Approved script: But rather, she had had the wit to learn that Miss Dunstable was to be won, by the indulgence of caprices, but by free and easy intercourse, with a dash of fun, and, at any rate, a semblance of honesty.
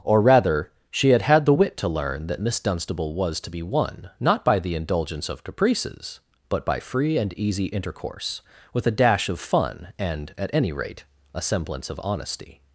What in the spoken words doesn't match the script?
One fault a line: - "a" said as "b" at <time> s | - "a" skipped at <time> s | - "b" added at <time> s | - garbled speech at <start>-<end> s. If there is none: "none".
- "But" said as "Or" at 0.0 s
- "not" added at 4.2 s